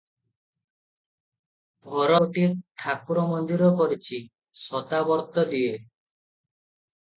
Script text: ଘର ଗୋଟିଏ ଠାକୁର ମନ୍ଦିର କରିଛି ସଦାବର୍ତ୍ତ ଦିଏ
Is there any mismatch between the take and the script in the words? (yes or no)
no